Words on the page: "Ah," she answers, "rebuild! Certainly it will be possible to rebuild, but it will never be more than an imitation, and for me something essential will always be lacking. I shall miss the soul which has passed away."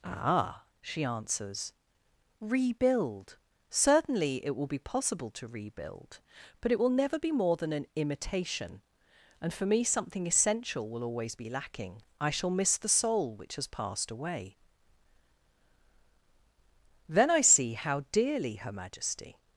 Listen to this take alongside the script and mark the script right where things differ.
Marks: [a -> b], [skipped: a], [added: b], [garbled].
"Ah," she answers, "rebuild! Certainly it will be possible to rebuild, but it will never be more than an imitation, and for me something essential will always be lacking. I shall miss the soul which has passed away." [added: Then I see how dearly Her Majesty]